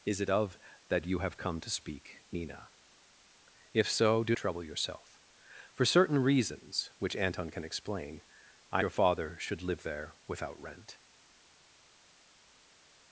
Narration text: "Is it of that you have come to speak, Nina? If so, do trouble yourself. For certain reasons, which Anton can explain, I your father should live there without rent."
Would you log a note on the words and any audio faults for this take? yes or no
no